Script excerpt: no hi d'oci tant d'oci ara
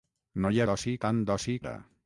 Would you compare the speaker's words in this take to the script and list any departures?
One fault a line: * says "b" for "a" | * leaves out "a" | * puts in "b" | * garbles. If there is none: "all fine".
all fine